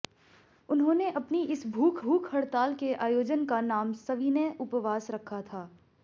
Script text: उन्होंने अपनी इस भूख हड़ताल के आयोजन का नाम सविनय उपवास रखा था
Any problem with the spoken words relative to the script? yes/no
yes